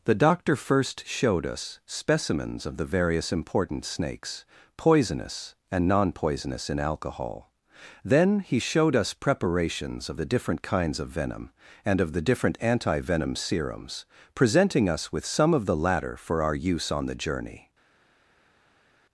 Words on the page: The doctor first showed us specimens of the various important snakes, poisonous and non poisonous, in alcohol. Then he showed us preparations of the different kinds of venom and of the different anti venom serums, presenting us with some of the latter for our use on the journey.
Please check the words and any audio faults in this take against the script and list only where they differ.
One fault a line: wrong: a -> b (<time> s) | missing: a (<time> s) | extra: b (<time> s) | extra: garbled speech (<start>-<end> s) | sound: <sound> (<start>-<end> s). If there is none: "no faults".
no faults